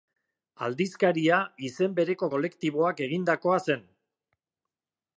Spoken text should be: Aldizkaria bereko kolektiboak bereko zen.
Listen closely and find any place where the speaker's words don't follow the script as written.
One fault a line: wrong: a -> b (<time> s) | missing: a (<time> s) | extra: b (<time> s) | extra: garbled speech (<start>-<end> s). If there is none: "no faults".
extra: izen (1.7 s)
wrong: bereko -> egindakoa (3.1 s)